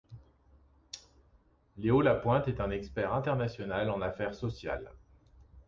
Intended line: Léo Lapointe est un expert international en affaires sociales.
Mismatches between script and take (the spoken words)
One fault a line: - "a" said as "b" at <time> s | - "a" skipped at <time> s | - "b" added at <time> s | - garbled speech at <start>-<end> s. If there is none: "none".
none